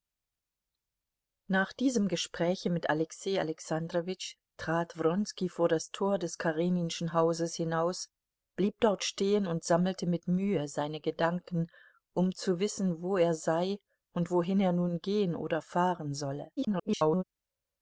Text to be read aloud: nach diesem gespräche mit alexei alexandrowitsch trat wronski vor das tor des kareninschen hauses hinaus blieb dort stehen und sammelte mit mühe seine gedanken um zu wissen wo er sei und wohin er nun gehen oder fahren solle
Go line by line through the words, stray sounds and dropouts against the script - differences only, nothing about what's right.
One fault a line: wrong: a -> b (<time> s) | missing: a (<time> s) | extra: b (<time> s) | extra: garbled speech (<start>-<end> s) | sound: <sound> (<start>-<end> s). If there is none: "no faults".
extra: garbled speech (16.6-17.2 s)